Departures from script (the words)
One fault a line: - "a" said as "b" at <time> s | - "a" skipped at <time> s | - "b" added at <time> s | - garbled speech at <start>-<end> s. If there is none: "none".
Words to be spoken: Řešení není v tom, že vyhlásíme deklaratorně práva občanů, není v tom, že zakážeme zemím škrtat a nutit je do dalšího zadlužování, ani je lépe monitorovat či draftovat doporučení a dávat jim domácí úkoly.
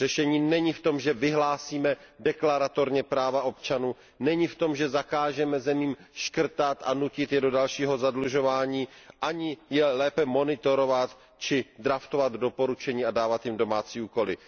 none